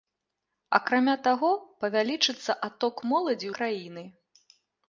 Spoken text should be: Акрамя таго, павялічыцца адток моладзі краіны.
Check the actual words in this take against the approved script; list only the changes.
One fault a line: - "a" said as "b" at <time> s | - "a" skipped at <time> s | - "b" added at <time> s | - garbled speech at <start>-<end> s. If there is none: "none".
none